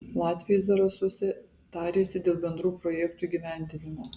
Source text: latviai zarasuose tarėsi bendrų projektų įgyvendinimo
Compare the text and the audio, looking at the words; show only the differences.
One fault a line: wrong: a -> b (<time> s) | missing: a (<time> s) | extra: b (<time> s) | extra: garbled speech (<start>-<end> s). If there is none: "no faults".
extra: dėl (2.3 s)